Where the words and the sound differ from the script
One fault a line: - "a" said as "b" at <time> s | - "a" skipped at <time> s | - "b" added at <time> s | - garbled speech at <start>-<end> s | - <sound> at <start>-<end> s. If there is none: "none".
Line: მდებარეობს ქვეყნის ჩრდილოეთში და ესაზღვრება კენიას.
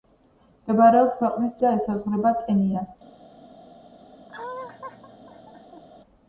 - "ჩრდილოეთში" skipped at 1.5 s
- laugh at 4.3-5.8 s